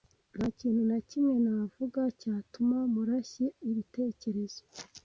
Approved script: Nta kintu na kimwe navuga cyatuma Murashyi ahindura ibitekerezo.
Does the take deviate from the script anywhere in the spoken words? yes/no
yes